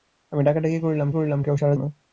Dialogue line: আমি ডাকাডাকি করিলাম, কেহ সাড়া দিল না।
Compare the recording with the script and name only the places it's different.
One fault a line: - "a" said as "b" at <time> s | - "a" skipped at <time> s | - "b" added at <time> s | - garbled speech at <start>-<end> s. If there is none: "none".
- "করিলাম" added at 1.1 s
- "দিল" skipped at 1.7 s